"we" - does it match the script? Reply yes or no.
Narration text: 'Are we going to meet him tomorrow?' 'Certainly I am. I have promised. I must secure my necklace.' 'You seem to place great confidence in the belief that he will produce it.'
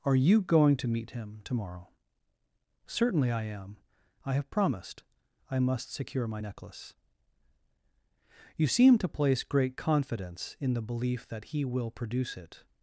no